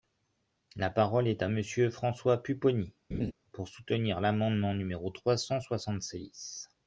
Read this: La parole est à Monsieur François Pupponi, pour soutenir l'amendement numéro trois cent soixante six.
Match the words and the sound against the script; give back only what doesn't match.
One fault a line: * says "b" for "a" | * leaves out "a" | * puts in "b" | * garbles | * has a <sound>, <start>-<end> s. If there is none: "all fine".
* has a laugh, 3.1-3.3 s